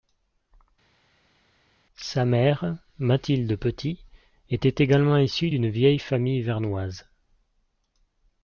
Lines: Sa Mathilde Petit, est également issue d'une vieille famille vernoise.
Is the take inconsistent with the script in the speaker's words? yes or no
yes